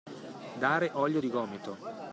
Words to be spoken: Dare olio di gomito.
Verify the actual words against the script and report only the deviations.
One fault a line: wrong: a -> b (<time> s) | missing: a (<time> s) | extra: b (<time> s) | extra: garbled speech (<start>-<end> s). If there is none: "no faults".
no faults